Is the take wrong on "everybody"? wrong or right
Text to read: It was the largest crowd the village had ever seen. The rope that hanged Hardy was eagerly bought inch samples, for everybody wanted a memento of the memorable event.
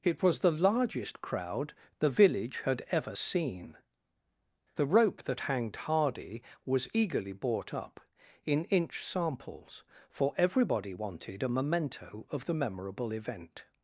right